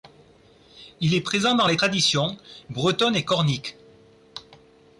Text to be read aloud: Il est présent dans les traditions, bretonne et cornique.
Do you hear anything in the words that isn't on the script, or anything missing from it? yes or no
no